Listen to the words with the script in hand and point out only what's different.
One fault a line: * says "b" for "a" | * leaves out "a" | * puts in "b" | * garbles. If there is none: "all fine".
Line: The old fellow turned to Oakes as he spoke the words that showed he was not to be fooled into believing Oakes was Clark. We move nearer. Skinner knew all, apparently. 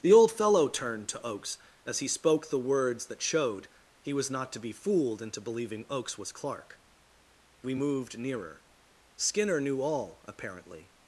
* says "moved" for "move"